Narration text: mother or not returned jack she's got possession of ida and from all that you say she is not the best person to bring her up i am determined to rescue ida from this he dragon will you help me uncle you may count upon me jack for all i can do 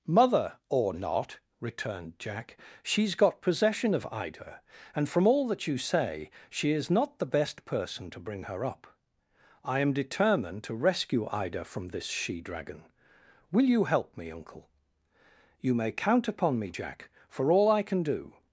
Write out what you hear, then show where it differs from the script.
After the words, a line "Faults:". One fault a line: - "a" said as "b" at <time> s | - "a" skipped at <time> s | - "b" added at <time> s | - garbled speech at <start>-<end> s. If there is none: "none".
mother or not returned jack she's got possession of ida and from all that you say she is not the best person to bring her up i am determined to rescue ida from this she dragon will you help me uncle you may count upon me jack for all i can do
Faults:
- "he" said as "she" at 12.1 s